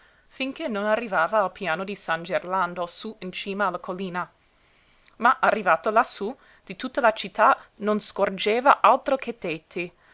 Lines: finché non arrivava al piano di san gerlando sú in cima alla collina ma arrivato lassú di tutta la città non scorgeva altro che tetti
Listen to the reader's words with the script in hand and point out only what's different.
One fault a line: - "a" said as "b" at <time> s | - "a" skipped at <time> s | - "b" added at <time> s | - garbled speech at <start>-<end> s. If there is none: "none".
none